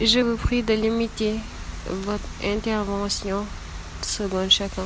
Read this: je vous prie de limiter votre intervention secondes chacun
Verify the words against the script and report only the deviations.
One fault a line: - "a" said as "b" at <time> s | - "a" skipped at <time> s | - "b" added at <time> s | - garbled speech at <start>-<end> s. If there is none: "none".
none